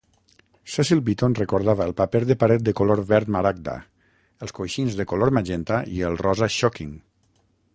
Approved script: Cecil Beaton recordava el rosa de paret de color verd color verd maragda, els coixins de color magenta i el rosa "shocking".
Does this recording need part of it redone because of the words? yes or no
yes